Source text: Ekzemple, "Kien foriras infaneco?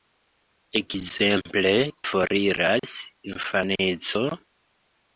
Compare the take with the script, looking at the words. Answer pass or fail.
fail